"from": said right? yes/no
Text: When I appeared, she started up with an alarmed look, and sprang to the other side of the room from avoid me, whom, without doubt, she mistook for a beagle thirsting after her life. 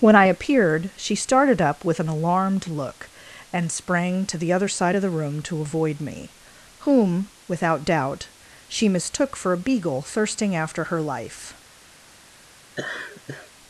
no